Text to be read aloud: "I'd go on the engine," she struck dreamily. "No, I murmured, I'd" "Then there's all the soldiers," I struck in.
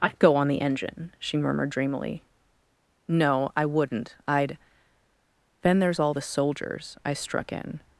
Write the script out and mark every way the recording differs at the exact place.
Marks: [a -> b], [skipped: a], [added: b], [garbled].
"I'd go on the engine," she [struck -> murmured] dreamily. "No, I [murmured, -> wouldn't] I'd" "Then there's all the soldiers," I struck in.